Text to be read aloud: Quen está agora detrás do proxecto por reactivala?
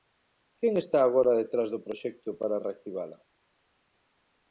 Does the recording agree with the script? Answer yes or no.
no